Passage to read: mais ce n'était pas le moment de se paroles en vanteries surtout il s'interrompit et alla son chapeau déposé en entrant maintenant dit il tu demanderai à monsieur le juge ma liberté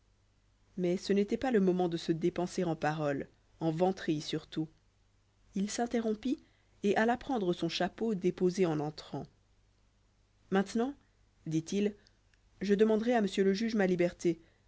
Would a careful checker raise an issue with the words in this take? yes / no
yes